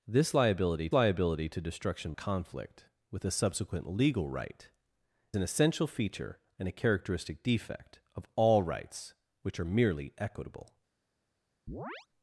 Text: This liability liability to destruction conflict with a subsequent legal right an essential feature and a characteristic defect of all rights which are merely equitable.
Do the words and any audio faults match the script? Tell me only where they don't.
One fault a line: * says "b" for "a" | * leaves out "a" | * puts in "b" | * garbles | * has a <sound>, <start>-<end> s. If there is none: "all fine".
* has a chirp, 11.7-12.1 s